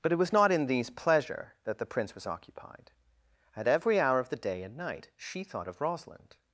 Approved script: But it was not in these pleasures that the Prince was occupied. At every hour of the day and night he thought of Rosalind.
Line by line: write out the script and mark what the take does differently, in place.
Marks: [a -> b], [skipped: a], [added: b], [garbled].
But it was not in these [pleasures -> pleasure] that the Prince was occupied. At every hour of the day and night [he -> she] thought of Rosalind.